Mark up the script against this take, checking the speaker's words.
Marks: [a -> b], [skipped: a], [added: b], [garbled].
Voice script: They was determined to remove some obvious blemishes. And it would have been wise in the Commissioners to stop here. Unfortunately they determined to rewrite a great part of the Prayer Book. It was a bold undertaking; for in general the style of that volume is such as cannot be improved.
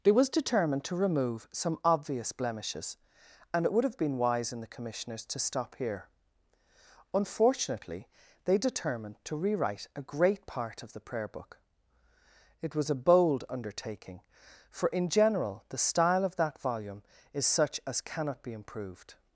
They was determined to remove some obvious blemishes. And it would have been wise in the Commissioners to stop here. Unfortunately they determined to rewrite a great part of the Prayer Book. It was a bold undertaking; for in general the style of that volume is such as cannot be improved.